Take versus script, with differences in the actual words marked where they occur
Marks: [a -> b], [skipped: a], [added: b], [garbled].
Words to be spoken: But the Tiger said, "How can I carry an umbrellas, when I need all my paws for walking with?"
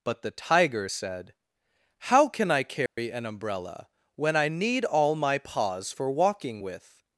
But the Tiger said, "How can I carry an [umbrellas, -> umbrella] when I need all my paws for walking with?"